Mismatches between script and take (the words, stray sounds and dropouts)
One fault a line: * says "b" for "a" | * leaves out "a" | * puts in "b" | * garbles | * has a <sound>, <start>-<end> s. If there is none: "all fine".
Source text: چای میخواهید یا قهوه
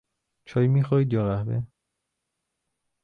all fine